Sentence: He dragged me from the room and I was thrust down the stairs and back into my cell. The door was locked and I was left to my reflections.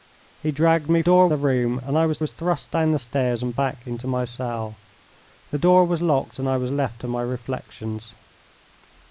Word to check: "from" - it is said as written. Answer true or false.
false